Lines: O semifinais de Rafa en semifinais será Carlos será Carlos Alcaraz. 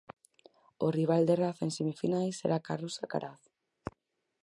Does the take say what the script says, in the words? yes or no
no